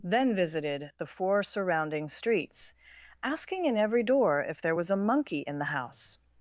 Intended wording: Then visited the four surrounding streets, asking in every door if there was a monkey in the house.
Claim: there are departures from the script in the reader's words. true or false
false